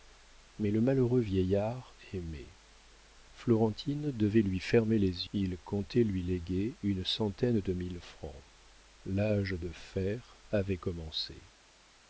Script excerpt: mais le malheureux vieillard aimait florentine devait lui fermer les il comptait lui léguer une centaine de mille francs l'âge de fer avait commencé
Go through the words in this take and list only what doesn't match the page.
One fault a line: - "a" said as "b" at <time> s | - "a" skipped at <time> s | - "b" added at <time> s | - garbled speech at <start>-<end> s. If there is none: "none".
none